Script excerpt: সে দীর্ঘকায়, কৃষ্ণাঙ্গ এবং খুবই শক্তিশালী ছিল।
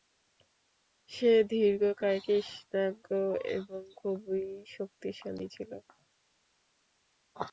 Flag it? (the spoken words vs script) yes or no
no